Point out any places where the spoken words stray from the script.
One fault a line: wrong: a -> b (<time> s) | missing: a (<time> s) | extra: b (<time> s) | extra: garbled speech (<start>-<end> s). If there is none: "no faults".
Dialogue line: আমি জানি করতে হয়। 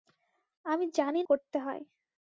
no faults